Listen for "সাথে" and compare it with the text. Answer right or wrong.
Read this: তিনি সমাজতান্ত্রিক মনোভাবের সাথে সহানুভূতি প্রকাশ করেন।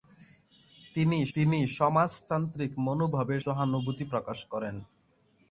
wrong